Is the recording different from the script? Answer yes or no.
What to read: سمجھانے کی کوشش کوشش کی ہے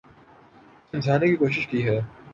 yes